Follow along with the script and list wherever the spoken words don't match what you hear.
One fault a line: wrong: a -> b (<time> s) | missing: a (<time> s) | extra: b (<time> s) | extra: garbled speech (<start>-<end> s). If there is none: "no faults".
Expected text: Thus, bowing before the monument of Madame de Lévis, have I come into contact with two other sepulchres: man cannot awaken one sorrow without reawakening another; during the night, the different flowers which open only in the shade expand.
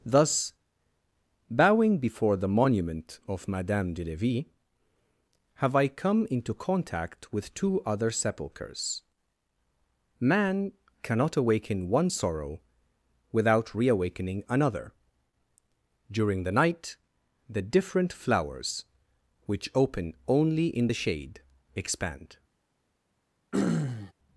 no faults